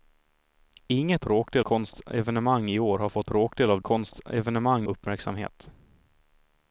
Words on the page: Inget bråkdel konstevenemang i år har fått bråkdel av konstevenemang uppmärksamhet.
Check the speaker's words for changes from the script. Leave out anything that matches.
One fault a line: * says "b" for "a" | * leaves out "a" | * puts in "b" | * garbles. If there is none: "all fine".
all fine